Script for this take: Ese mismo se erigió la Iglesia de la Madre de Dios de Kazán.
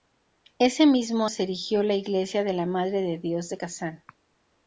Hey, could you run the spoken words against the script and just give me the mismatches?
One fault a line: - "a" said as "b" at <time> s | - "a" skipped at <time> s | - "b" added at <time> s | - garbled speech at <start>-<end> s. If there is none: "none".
none